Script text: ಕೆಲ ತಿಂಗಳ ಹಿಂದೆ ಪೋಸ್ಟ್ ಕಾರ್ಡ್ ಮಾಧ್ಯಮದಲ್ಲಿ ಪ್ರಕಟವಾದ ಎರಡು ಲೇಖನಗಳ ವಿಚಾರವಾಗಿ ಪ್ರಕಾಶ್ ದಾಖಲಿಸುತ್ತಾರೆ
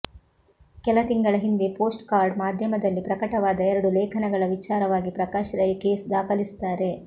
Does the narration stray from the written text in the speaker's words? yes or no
yes